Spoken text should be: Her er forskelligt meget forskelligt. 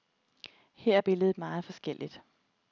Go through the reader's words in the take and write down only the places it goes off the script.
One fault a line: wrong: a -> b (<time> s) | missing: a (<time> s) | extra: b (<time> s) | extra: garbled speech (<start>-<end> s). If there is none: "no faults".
wrong: forskelligt -> billedet (1.0 s)